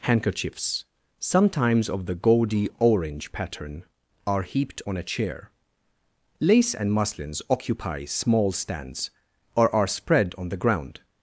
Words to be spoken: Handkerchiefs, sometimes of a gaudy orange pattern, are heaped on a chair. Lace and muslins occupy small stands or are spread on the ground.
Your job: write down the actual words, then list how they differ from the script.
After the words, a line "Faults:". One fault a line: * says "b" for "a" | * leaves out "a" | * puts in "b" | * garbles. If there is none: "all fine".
Handkerchiefs, sometimes of the gaudy orange pattern, are heaped on a chair. Lace and muslins occupy small stands or are spread on the ground.
Faults:
* says "the" for "a"